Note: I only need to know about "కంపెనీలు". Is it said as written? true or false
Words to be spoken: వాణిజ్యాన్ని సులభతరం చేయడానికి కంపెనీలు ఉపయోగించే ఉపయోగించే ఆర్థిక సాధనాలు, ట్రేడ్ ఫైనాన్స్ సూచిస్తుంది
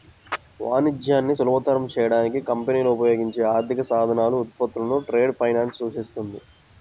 true